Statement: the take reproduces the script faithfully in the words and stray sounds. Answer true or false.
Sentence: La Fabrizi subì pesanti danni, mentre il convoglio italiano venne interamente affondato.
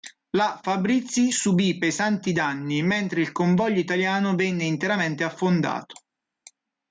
true